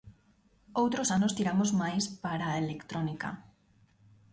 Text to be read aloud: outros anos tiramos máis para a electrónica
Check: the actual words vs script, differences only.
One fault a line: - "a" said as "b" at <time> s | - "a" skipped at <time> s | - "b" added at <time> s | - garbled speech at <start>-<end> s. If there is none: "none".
none